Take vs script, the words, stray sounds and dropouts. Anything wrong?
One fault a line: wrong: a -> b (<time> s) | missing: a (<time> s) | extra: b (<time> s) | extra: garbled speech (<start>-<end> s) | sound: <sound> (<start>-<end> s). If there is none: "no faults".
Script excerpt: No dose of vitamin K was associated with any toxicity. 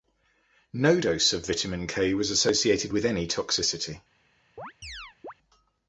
sound: chirp (4.6-5.3 s)